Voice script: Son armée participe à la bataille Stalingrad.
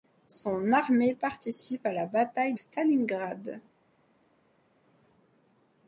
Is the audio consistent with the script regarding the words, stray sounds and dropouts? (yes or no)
yes